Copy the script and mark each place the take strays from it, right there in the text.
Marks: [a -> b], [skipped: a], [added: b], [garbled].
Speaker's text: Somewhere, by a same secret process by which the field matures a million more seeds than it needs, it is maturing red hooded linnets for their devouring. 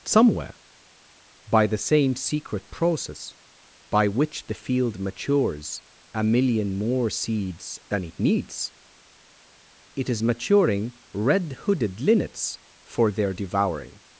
Somewhere, by [a -> the] same secret process by which the field matures a million more seeds than it needs, it is maturing red hooded linnets for their devouring.